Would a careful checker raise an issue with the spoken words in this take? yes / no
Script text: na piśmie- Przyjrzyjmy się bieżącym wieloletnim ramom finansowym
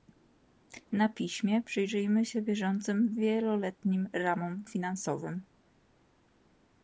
no